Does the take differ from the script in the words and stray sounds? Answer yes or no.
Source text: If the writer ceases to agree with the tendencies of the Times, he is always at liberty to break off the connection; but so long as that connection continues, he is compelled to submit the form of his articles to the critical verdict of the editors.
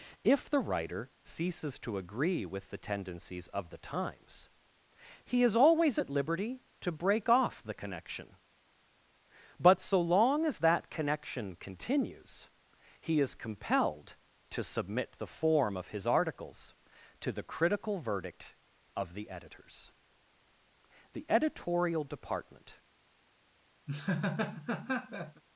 yes